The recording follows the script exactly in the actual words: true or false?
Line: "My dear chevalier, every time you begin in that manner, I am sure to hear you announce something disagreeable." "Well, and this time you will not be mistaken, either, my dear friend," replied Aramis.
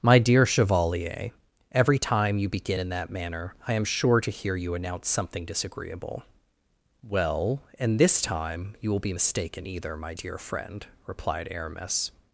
false